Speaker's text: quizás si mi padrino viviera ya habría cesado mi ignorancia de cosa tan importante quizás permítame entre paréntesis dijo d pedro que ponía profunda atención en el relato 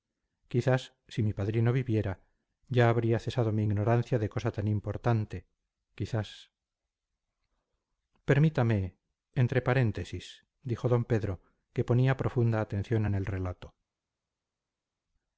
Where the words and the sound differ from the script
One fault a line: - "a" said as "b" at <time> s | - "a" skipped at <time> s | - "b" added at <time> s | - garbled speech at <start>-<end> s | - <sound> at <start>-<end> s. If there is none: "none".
none